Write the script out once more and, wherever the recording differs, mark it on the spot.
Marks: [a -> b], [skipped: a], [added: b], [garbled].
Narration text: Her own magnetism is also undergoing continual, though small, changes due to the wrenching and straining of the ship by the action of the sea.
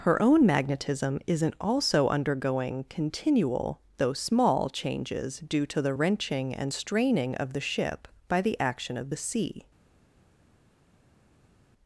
Her own magnetism [is -> isn't] also undergoing continual, though small, changes due to the wrenching and straining of the ship by the action of the sea.